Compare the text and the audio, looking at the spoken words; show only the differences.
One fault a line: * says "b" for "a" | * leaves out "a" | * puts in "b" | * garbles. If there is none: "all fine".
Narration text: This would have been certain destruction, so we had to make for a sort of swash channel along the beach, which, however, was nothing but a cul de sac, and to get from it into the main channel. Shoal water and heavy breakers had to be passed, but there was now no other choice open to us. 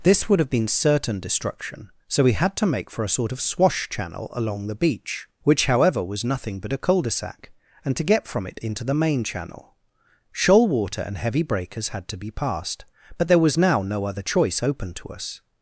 all fine